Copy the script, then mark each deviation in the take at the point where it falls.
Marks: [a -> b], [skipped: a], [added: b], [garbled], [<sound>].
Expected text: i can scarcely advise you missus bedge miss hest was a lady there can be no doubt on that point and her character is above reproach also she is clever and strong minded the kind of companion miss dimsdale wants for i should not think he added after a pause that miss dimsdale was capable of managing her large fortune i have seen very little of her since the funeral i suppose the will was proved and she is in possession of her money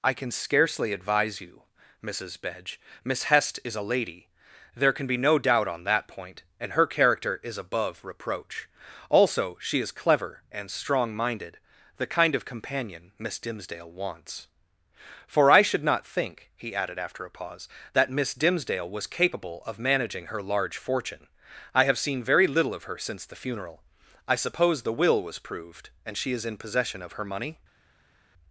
i can scarcely advise you missus bedge miss hest [was -> is] a lady there can be no doubt on that point and her character is above reproach also she is clever and strong minded the kind of companion miss dimsdale wants for i should not think he added after a pause that miss dimsdale was capable of managing her large fortune i have seen very little of her since the funeral i suppose the will was proved and she is in possession of her money